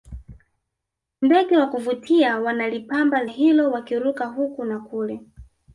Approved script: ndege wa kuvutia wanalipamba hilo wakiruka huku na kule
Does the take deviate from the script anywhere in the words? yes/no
no